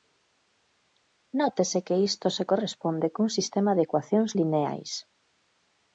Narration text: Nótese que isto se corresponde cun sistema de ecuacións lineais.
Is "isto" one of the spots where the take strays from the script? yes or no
no